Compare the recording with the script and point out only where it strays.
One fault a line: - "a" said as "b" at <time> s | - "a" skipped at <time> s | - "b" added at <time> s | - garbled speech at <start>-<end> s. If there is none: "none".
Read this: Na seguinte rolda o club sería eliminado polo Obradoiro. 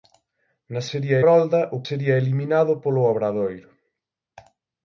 - "seguinte" said as "sería" at 0.9 s
- "club" skipped at 1.8 s